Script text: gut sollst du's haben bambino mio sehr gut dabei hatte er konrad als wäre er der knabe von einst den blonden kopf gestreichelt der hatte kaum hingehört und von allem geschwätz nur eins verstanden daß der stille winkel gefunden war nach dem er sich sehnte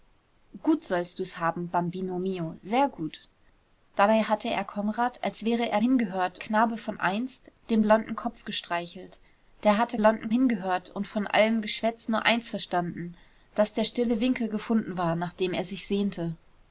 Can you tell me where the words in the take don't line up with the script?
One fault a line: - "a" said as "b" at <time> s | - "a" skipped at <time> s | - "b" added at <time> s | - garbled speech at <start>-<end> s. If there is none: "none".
- "der" said as "hingehört" at 5.8 s
- "kaum" said as "blonden" at 10.0 s